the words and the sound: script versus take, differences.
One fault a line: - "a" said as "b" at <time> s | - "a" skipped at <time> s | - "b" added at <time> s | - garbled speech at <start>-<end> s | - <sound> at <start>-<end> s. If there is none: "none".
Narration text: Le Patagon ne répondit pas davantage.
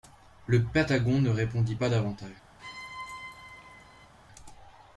- squeak at 2.6-4.1 s